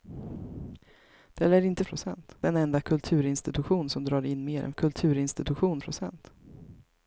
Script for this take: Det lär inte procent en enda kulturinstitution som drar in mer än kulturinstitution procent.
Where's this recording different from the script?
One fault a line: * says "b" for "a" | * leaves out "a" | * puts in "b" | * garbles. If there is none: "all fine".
all fine